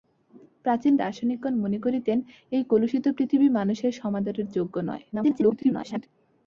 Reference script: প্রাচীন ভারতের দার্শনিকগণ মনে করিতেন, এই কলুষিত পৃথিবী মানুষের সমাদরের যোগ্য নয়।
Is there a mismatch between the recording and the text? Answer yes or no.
yes